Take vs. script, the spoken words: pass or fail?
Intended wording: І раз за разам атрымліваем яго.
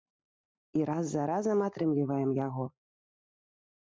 pass